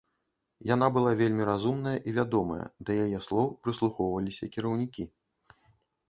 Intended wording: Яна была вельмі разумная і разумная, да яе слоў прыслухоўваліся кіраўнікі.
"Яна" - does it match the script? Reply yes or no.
yes